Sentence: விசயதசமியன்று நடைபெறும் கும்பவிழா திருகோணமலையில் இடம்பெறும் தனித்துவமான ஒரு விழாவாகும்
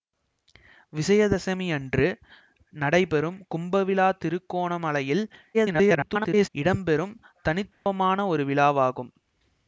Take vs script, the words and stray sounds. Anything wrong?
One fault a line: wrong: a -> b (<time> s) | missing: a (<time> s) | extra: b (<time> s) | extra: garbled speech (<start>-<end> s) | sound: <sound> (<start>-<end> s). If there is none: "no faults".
extra: garbled speech (5.5-6.5 s)
sound: dropout (7.7-7.9 s)